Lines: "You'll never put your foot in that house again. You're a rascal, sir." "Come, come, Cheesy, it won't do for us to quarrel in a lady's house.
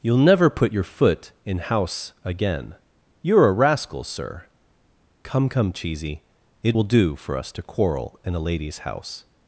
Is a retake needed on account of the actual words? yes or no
yes